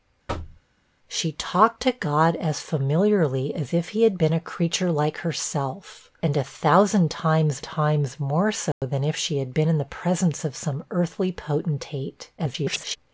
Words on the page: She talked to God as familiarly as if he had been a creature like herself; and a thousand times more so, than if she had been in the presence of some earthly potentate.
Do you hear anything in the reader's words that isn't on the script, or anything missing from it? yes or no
yes